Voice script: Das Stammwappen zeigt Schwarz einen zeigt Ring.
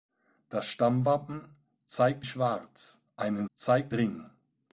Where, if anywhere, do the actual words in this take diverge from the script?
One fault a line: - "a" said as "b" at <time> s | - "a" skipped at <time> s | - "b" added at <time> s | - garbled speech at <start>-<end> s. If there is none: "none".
none